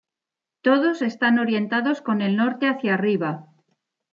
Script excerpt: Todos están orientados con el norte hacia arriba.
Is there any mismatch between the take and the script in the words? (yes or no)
no